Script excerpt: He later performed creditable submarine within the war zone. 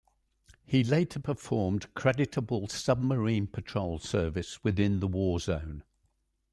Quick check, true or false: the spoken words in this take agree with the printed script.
false